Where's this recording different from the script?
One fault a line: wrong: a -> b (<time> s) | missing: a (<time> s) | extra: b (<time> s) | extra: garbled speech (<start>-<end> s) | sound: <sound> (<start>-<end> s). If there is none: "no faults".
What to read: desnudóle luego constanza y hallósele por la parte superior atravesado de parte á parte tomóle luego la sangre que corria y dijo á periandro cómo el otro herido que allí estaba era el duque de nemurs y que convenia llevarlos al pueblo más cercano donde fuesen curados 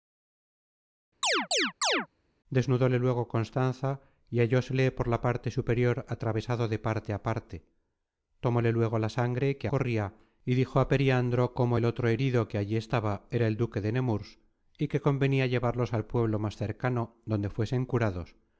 sound: chirp (1.2-2.1 s)